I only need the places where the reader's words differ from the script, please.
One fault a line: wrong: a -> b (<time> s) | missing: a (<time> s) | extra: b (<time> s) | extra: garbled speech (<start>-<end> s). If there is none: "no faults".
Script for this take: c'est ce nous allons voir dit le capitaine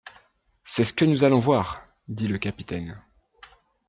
extra: que (0.9 s)